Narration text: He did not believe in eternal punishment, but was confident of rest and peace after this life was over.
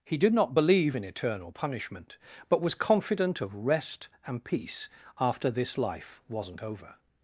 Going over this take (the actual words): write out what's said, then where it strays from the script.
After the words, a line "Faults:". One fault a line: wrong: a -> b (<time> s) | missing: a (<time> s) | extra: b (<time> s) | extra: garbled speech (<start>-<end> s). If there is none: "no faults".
He did not believe in eternal punishment, but was confident of rest and peace after this life wasn't over.
Faults:
wrong: was -> wasn't (6.3 s)